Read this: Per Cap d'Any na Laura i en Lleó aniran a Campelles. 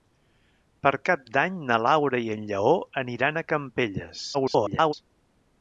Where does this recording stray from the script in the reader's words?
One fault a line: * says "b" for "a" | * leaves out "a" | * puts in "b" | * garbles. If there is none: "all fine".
* garbles